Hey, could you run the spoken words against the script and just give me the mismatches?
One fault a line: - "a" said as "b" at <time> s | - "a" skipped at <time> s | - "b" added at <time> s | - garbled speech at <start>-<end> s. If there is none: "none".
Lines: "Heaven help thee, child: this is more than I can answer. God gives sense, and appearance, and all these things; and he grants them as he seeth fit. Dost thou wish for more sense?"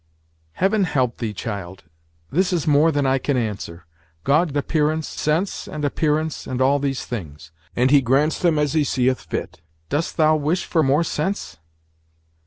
- "gives" said as "appearance" at 4.6 s